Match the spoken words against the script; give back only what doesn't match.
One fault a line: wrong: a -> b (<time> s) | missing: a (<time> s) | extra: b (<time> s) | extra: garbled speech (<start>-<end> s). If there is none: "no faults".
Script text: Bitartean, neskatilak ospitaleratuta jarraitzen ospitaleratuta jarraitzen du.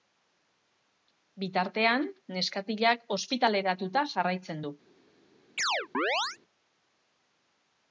missing: ospitaleratuta jarraitzen (4.6 s)